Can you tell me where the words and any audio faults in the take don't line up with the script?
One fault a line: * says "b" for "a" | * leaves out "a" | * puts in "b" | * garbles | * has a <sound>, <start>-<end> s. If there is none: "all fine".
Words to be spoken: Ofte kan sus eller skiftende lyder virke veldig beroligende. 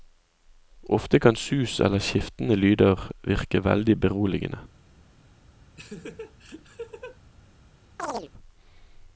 * has a laugh, 5.8-7.2 s
* has a chirp, 8.0-8.3 s